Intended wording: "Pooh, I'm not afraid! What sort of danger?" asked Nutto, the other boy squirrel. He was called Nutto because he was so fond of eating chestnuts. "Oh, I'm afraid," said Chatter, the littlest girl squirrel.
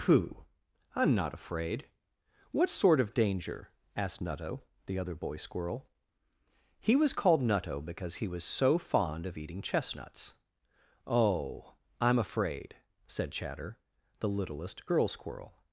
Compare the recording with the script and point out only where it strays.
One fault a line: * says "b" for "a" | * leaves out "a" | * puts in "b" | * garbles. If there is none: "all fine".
all fine